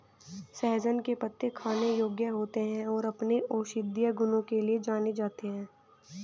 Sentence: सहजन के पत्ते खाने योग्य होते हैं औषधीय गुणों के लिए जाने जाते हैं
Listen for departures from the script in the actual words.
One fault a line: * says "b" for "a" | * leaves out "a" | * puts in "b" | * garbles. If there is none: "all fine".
* puts in "और अपने"